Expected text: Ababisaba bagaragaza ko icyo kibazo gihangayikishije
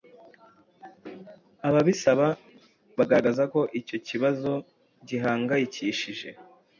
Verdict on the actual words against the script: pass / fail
pass